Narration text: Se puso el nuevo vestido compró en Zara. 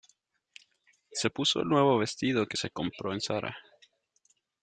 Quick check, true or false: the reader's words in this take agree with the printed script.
false